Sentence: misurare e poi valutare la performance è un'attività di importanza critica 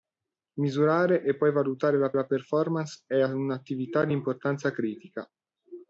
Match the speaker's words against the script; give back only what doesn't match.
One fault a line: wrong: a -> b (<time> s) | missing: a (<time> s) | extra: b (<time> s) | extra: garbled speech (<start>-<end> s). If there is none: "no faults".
extra: la (2.1 s)